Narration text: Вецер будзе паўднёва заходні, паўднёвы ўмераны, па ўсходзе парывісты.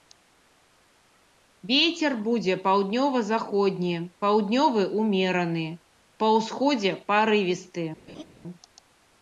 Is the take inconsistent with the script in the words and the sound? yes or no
yes